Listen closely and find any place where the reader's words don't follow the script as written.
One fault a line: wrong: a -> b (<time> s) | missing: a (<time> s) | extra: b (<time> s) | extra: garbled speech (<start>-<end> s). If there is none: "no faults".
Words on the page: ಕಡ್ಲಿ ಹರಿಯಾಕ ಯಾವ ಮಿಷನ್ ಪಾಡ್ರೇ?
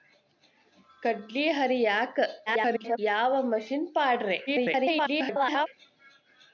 extra: garbled speech (2.5-3.0 s)
extra: garbled speech (4.5-5.7 s)